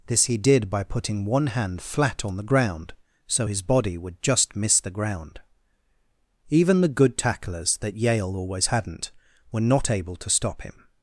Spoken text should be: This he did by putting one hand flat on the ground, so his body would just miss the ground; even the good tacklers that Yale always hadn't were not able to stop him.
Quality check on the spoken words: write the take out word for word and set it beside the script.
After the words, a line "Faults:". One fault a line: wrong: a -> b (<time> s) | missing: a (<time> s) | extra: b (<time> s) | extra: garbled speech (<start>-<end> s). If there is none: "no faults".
This he did by putting one hand flat on the ground, so his body would just miss the ground; even the good tacklers that Yale always hadn't were not able to stop him.
Faults:
no faults